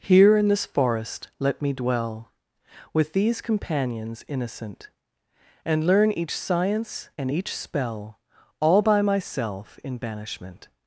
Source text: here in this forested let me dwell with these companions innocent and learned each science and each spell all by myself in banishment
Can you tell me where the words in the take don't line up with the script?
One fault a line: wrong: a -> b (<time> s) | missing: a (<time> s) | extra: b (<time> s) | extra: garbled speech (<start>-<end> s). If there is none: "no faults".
wrong: forested -> forest (0.7 s)
wrong: learned -> learn (5.8 s)